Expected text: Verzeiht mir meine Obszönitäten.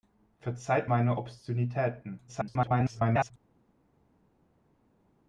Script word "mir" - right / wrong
wrong